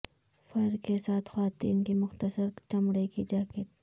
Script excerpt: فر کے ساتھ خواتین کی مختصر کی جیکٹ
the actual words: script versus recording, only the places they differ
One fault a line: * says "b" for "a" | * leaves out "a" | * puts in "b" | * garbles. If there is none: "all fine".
* puts in "چمڑے"